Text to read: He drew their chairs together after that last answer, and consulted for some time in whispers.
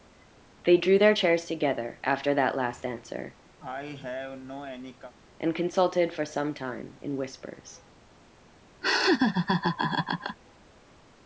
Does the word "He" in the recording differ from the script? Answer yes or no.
yes